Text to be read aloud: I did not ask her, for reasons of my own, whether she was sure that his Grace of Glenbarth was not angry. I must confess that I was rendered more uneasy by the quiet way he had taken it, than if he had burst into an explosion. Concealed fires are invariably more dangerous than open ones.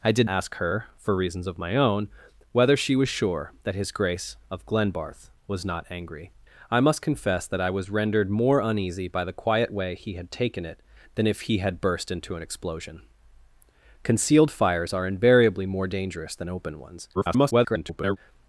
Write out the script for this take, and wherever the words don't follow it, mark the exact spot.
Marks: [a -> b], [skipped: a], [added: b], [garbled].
I did [skipped: not] ask her, for reasons of my own, whether she was sure that his Grace of Glenbarth was not angry. I must confess that I was rendered more uneasy by the quiet way he had taken it, than if he had burst into an explosion. Concealed fires are invariably more dangerous than open ones. [garbled]